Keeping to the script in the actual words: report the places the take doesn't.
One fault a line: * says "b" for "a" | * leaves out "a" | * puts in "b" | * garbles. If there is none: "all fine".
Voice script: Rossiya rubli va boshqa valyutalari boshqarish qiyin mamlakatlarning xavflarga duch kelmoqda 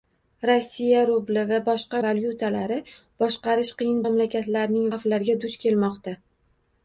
all fine